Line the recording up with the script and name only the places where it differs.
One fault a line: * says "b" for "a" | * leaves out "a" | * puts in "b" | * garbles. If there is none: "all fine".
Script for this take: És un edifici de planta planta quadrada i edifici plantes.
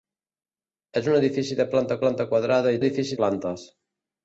all fine